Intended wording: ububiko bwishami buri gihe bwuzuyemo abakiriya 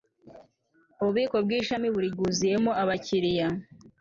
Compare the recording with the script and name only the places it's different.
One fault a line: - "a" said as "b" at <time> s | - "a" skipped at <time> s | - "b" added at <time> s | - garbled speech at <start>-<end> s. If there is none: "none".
- "gihe" skipped at 2.1 s